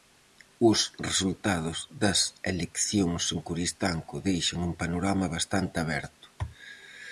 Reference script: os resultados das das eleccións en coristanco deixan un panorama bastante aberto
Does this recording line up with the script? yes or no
no